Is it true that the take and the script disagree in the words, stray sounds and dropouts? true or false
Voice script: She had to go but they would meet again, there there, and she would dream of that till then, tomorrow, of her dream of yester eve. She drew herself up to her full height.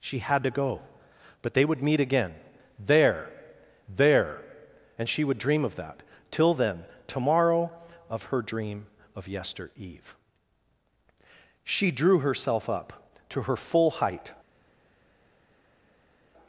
false